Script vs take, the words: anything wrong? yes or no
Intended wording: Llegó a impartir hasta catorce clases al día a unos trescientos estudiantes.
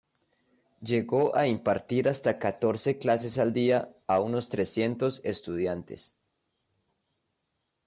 no